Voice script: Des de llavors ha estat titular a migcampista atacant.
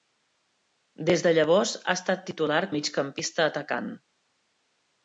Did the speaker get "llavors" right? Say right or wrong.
right